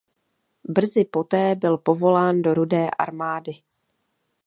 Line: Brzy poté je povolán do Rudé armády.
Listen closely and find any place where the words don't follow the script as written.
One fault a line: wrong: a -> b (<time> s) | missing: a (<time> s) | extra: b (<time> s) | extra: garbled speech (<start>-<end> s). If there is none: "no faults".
wrong: je -> byl (1.6 s)